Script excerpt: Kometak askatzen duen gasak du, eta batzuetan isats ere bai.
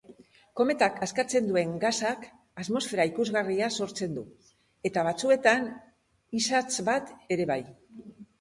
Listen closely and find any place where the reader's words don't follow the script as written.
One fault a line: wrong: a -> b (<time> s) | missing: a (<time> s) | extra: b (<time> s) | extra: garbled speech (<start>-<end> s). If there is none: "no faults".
extra: atmosfera ikusgarria sortzen (2.6 s)
extra: bat (6.9 s)